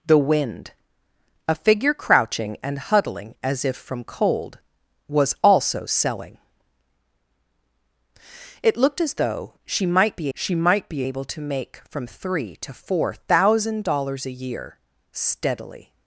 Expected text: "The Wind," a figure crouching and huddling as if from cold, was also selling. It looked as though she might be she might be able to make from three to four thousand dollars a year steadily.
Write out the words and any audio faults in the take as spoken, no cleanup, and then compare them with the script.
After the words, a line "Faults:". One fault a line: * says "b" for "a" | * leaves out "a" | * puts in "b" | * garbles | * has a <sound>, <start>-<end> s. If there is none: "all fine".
"The Wind," a figure crouching and huddling as if from cold, was also selling. It looked as though she might be she might be able to make from three to four thousand dollars a year steadily.
Faults:
all fine